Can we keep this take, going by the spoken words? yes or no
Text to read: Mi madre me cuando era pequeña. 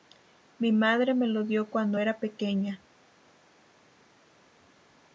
no